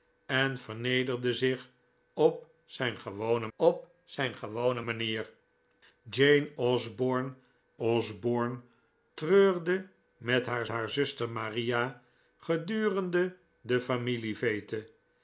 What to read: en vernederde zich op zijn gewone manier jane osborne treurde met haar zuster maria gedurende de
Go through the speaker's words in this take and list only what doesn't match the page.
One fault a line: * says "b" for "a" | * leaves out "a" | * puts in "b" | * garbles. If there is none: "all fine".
* puts in "op zijn gewone"
* puts in "osborne"
* puts in "haar"